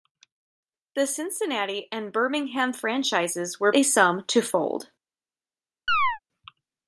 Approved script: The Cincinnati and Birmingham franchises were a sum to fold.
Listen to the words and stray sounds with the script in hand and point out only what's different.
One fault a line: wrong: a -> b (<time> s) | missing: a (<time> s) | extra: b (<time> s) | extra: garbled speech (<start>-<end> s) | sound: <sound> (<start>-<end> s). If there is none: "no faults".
sound: chirp (5.9-6.2 s)